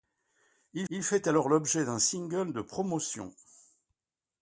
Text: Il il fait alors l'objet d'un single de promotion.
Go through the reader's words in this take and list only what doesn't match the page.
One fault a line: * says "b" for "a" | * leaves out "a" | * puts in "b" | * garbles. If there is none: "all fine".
all fine